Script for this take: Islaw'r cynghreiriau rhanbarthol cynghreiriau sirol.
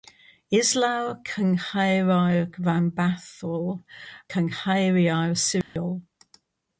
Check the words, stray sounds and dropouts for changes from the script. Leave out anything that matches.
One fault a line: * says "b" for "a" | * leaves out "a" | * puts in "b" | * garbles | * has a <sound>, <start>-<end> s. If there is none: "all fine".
* has a dropout, 5.6-5.8 s